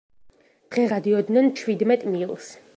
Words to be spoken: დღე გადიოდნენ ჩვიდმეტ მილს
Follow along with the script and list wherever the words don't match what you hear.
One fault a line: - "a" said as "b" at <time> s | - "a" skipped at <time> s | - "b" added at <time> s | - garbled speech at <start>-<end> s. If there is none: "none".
none